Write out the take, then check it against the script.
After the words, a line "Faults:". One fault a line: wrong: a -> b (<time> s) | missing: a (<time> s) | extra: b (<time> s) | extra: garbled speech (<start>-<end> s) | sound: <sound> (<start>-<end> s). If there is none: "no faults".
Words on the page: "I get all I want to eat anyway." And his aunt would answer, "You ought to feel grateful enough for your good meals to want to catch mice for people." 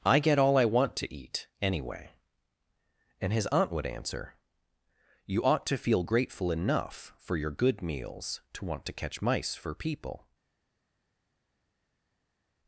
"I get all I want to eat anyway." And his aunt would answer, "You ought to feel grateful enough for your good meals to want to catch mice for people."
Faults:
no faults